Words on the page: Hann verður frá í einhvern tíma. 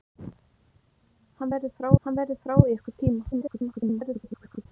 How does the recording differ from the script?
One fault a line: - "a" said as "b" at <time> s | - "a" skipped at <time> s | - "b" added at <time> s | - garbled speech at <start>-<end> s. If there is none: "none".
- "hann verður frá" added at 2.0 s
- garbled speech at 3.3-4.7 s